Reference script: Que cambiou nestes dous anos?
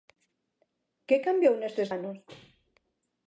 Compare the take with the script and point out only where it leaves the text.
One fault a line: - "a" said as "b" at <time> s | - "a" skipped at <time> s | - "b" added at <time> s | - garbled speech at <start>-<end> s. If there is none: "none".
- "dous" skipped at 1.9 s